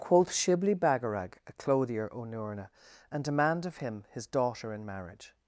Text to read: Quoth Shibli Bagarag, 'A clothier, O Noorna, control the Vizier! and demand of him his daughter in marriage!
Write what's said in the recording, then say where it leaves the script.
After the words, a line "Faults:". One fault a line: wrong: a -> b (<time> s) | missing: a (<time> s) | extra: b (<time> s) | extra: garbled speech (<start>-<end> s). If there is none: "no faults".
Quoth Shibli Bagarag, 'A clothier, O Noorna, and demand of him his daughter in marriage!
Faults:
missing: control the Vizier (2.7 s)